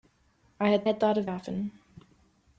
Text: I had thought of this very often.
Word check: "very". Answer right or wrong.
wrong